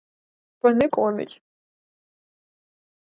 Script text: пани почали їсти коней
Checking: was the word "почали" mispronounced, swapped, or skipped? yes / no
yes